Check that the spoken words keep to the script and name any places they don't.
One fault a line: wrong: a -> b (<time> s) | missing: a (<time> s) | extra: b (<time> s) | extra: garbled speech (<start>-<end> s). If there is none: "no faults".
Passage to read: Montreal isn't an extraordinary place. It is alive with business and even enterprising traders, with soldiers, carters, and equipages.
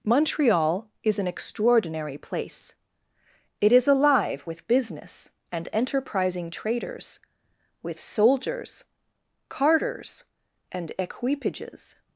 wrong: isn't -> is (1.0 s)
missing: even (5.7 s)